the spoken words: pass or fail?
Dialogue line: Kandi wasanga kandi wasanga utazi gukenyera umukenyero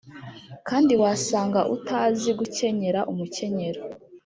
fail